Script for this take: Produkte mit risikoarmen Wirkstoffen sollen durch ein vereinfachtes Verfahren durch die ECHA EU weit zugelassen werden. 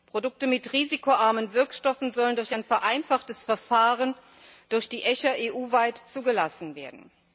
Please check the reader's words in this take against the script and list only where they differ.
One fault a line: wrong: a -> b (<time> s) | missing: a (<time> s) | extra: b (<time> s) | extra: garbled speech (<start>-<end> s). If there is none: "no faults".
no faults